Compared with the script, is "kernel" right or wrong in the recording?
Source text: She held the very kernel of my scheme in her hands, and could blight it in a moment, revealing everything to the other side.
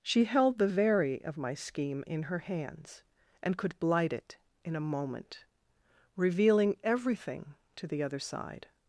wrong